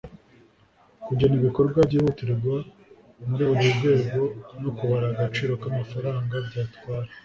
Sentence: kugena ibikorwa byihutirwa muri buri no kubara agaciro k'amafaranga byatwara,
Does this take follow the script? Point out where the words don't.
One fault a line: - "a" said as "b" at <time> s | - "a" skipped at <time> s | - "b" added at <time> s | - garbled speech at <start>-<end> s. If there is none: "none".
- "rwego" added at 3.8 s